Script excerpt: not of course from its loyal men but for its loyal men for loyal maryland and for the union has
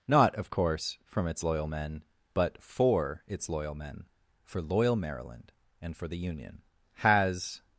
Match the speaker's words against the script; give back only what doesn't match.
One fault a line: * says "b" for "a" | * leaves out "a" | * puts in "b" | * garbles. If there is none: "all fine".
all fine